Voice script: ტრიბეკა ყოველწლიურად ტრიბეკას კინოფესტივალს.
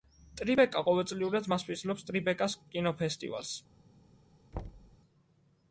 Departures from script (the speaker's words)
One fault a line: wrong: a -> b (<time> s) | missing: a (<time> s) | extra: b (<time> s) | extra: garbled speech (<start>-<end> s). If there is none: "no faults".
extra: მასპინძლობს (1.6 s)